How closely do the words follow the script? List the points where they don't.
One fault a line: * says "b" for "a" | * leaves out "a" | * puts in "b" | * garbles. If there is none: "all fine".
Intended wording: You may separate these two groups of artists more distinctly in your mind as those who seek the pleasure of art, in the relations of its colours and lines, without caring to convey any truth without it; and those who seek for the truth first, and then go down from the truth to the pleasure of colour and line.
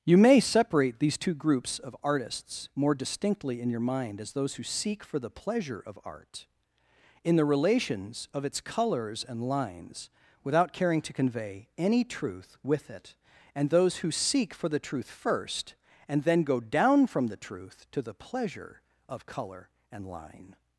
* puts in "for"
* says "with" for "without"